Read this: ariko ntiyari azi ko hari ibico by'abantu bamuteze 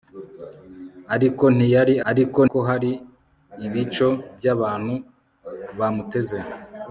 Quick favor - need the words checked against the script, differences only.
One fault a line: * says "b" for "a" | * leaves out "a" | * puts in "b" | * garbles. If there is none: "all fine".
* says "ariko" for "azi"